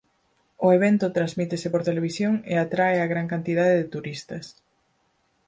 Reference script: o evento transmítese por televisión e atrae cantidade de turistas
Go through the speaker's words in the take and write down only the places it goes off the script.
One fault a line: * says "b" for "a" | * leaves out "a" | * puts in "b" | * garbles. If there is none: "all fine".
* puts in "a gran"